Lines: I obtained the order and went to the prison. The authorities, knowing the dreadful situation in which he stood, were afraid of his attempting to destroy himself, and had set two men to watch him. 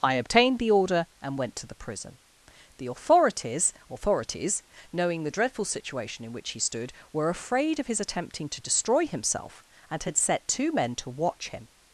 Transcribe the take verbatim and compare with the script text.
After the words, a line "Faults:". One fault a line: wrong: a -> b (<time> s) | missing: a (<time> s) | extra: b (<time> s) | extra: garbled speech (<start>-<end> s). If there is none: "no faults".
I obtained the order and went to the prison. The authorities authorities, knowing the dreadful situation in which he stood, were afraid of his attempting to destroy himself, and had set two men to watch him.
Faults:
extra: authorities (3.9 s)